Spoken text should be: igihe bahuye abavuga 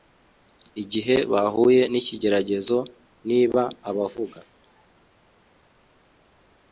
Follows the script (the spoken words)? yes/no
no